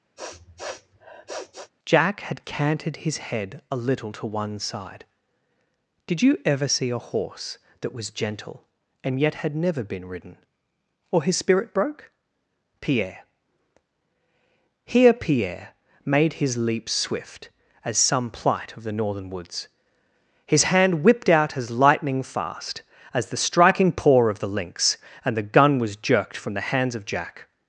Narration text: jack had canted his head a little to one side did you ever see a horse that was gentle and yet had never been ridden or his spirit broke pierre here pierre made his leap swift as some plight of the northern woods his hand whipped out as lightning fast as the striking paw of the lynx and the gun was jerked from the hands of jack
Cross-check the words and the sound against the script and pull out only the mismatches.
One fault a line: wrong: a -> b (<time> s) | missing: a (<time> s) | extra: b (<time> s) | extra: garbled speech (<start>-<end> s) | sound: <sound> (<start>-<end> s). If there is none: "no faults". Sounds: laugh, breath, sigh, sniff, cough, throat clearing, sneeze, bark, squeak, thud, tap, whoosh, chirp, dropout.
sound: sniff (0.2-1.7 s)